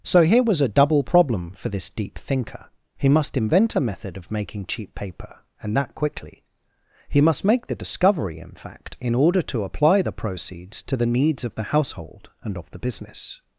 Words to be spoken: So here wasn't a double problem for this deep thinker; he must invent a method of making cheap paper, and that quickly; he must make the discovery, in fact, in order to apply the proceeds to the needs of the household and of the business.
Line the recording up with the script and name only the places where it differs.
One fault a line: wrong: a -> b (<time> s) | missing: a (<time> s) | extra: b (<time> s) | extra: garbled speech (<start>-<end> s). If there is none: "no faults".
wrong: wasn't -> was (0.4 s)